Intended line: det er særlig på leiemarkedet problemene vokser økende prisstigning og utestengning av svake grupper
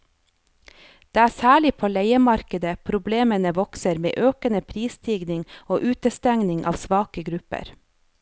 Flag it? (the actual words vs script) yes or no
yes